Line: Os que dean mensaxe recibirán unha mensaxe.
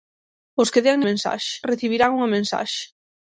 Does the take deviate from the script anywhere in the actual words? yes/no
no